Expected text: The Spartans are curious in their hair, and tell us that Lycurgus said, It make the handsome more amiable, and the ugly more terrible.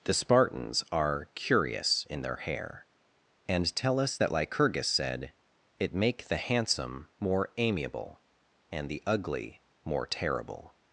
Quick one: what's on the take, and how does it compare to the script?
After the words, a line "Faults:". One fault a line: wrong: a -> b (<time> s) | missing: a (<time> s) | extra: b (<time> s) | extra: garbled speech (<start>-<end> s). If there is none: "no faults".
The Spartans are curious in their hair, and tell us that Lycurgus said, It make the handsome more amiable, and the ugly more terrible.
Faults:
no faults